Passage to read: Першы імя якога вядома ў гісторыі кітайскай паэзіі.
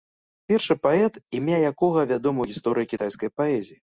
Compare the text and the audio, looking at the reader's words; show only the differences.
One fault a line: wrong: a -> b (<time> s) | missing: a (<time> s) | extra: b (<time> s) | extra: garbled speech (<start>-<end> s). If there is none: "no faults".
extra: паэт (0.8 s)